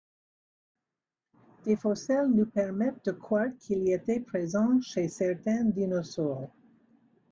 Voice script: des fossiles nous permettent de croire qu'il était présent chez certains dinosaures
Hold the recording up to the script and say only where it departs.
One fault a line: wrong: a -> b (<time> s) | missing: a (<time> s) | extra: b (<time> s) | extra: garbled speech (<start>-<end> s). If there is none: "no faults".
no faults